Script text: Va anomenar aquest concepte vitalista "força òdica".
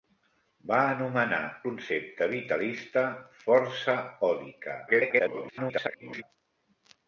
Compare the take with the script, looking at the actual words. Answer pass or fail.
fail